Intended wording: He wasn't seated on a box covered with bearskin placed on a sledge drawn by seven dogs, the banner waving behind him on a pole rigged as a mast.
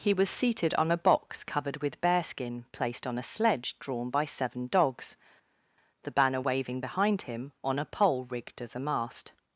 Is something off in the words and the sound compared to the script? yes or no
yes